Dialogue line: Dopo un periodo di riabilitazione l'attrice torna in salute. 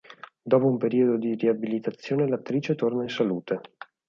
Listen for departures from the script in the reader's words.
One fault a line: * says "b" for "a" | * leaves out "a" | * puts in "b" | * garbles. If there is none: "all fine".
all fine